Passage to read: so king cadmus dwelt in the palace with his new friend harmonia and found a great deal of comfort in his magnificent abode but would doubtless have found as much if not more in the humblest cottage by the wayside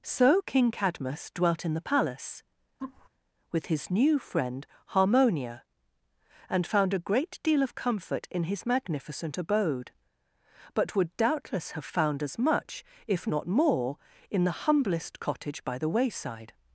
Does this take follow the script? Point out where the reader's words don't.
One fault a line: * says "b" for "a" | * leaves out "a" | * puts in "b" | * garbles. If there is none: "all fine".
all fine